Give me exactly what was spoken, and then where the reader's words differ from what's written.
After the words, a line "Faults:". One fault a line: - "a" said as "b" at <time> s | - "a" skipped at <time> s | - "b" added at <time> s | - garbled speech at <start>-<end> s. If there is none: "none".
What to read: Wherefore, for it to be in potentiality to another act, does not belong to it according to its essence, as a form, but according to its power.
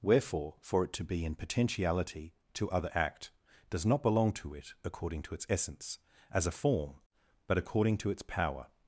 Wherefore, for it to be in potentiality to other act, does not belong to it according to its essence, as a form, but according to its power.
Faults:
- "another" said as "other" at 2.7 s